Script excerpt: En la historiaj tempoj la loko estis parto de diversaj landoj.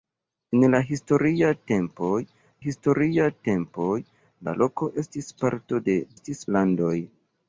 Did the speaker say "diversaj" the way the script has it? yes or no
no